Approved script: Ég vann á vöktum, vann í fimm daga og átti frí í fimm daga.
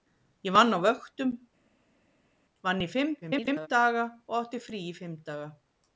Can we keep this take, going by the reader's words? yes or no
no